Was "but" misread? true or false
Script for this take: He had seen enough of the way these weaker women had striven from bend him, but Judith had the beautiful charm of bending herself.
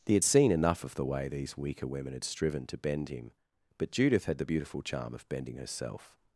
false